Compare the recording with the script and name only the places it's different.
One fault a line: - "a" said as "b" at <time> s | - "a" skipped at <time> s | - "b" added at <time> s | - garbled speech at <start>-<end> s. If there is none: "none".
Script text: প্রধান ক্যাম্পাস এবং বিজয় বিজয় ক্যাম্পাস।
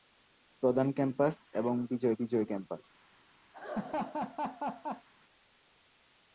none